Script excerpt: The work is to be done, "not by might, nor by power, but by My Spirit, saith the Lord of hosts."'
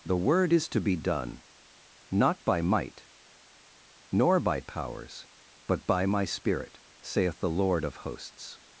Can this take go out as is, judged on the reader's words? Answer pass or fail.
fail